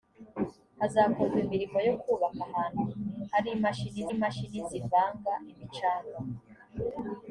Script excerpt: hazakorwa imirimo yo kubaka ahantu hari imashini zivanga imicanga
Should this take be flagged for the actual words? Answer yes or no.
yes